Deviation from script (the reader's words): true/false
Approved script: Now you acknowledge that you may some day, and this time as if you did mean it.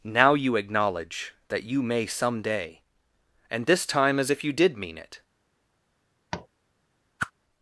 false